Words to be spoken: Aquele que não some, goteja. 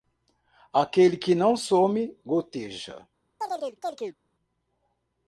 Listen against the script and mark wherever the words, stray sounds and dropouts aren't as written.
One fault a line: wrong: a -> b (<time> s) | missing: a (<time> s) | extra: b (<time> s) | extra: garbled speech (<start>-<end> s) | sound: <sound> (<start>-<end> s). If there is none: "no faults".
sound: chirp (3.4-4.2 s)